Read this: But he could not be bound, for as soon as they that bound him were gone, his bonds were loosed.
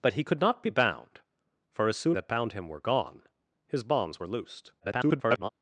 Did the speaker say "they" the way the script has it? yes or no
no